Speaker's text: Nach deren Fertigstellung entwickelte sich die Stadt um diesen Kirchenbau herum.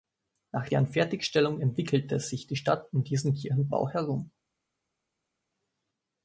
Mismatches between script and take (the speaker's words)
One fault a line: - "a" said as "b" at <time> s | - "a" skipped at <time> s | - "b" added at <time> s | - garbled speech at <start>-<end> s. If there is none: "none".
none